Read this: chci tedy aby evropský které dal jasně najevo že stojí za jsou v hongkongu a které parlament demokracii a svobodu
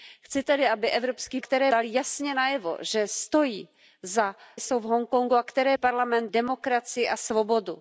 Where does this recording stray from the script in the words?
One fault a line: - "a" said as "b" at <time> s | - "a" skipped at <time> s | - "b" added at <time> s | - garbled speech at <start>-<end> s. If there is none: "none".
none